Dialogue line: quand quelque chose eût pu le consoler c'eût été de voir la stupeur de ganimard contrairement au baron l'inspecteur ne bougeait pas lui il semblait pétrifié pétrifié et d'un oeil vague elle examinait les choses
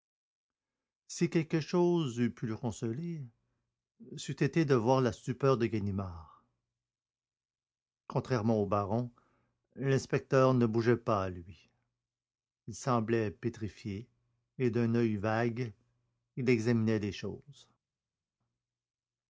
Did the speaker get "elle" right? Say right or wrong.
wrong